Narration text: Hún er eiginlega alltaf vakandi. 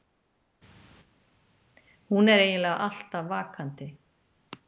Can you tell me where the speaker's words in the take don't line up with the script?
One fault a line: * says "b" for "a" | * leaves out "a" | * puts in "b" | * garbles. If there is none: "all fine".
all fine